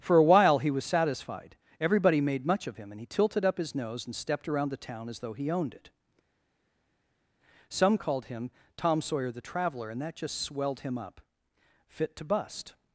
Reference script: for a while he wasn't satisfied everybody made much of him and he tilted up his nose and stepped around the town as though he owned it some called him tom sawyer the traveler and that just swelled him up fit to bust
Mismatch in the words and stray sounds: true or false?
true